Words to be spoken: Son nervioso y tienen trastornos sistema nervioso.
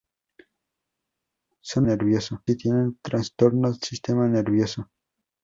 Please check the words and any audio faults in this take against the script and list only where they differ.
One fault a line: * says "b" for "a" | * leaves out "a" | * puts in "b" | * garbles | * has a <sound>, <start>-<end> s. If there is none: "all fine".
all fine